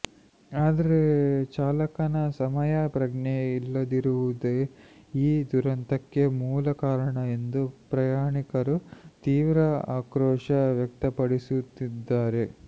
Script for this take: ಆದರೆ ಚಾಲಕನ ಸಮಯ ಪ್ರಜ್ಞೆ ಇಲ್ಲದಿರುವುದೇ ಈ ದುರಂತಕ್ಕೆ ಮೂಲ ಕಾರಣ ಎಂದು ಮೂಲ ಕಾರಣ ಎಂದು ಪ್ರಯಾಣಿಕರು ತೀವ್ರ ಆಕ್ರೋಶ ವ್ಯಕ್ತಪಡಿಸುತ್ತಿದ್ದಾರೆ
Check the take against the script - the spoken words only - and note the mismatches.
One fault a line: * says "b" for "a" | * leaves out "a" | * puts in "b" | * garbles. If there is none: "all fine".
* leaves out "ಮೂಲ ಕಾರಣ ಎಂದು"